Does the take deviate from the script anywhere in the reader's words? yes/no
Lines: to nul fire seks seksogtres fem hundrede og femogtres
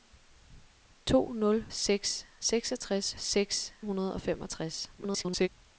yes